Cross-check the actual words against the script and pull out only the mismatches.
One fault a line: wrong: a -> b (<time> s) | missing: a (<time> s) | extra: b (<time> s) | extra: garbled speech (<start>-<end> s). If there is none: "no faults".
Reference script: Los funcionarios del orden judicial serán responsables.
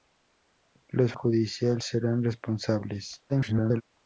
missing: funcionarios del orden (1.1 s)
extra: garbled speech (3.3-3.8 s)